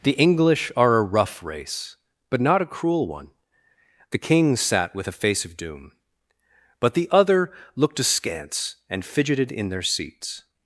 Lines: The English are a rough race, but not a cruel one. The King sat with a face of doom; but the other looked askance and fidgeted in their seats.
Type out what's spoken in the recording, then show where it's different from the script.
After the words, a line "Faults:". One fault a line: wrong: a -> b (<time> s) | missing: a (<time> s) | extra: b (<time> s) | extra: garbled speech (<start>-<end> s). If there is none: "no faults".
The English are a rough race, but not a cruel one. The King sat with a face of doom; but the other looked askance and fidgeted in their seats.
Faults:
no faults